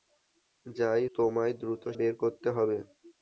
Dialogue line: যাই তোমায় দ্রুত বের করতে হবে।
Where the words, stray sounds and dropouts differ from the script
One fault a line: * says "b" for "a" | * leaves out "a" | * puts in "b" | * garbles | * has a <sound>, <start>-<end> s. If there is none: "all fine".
all fine